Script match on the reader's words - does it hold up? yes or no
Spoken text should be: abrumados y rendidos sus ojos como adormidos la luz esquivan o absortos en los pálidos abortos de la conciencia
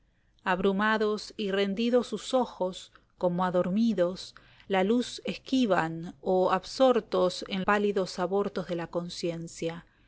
no